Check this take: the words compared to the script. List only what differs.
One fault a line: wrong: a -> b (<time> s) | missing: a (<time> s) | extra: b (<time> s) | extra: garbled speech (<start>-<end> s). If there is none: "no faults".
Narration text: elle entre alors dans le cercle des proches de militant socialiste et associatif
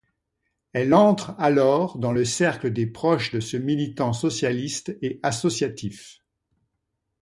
extra: ce (3.4 s)